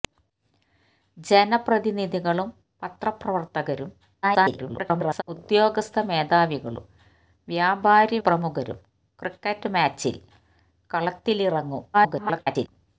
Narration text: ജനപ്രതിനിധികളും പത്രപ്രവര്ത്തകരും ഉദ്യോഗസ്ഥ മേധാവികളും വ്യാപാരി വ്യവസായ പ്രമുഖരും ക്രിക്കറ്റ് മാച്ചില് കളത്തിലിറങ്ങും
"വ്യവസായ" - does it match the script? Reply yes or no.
no